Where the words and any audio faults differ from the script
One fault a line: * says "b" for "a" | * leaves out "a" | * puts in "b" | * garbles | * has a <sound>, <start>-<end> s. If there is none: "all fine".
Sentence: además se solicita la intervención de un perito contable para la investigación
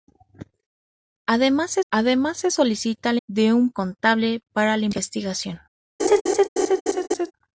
* puts in "además se"
* leaves out "intervención"
* leaves out "perito"
* has a laugh, 6.0-7.3 s